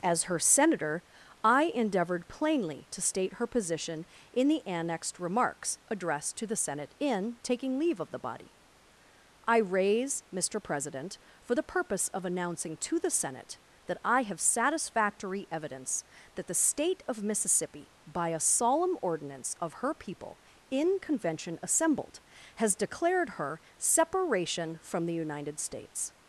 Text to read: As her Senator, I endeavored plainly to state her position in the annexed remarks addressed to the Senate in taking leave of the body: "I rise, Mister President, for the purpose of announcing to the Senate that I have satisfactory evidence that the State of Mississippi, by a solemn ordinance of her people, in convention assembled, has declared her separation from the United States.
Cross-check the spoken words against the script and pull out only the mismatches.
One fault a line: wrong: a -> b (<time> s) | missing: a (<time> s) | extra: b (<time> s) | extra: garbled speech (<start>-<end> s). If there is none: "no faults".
wrong: rise -> raise (9.6 s)